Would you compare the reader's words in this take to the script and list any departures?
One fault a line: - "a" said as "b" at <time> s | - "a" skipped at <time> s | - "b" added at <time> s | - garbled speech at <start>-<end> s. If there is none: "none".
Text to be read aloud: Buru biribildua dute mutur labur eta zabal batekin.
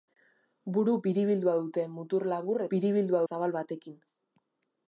- "eta" said as "biribildua" at 2.7 s